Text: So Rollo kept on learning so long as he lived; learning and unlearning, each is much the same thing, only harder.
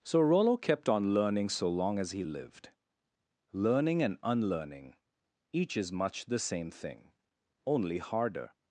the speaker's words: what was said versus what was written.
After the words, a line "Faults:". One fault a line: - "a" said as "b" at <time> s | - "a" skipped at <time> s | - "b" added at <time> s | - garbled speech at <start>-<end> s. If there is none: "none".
So Rollo kept on learning so long as he lived; learning and unlearning, each is much the same thing, only harder.
Faults:
none